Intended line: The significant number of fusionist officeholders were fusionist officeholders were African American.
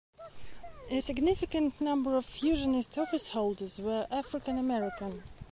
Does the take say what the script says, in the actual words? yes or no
no